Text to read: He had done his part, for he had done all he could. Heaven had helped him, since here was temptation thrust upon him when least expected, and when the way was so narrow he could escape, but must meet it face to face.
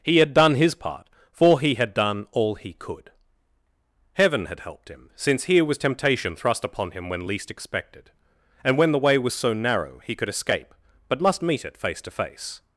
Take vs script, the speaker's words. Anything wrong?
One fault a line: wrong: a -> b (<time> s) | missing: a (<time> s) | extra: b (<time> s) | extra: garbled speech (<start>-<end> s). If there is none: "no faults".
no faults